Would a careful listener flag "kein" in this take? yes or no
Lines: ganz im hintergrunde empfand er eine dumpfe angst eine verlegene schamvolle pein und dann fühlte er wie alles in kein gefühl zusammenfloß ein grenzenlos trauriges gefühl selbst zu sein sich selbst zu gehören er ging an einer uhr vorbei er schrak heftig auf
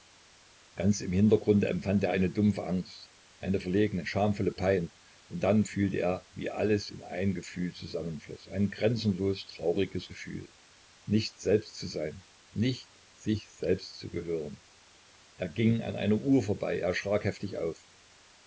yes